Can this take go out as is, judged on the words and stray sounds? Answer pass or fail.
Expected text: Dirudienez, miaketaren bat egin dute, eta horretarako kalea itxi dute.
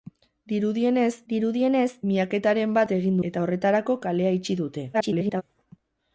fail